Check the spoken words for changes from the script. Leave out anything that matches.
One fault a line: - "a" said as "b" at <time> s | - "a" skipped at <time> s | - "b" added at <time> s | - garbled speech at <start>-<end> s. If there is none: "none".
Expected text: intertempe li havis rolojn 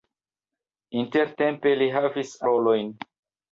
none